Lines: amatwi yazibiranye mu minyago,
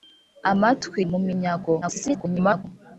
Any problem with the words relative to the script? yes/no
yes